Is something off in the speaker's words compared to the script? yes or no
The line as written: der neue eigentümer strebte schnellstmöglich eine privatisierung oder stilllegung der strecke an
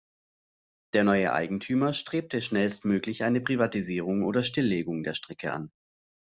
no